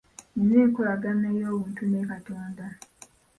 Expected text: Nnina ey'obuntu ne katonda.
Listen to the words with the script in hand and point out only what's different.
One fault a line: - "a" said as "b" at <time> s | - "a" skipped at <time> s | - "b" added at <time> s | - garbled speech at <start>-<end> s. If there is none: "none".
- "enkolagana" added at 0.7 s